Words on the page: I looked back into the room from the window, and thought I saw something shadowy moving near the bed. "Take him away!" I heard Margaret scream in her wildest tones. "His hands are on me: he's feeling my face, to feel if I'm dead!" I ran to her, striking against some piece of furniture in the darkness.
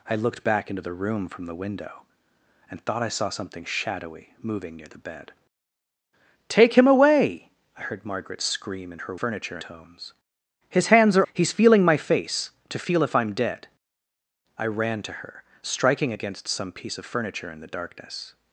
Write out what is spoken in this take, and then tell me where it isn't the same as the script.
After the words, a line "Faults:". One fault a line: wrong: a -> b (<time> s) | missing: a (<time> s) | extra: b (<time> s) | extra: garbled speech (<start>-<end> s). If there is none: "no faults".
I looked back into the room from the window, and thought I saw something shadowy moving near the bed. "Take him away!" I heard Margaret scream in her furniture tones. "His hands are: he's feeling my face, to feel if I'm dead!" I ran to her, striking against some piece of furniture in the darkness.
Faults:
wrong: wildest -> furniture (9.1 s)
missing: on me (11.3 s)